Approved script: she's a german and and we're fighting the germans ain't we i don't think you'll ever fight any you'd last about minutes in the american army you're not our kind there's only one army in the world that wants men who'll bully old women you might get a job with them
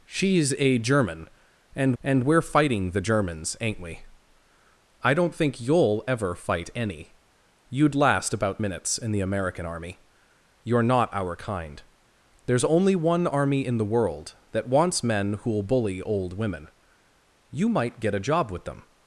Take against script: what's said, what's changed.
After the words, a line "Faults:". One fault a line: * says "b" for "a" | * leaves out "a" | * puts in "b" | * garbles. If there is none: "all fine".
she's a german and and we're fighting the germans ain't we i don't think you'll ever fight any you'd last about minutes in the american army you're not our kind there's only one army in the world that wants men who'll bully old women you might get a job with them
Faults:
all fine